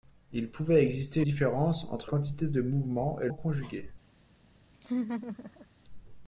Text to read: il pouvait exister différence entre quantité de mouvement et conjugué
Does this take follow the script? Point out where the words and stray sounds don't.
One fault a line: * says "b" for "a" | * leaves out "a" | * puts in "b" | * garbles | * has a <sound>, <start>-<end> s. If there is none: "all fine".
* has a laugh, 4.7-5.7 s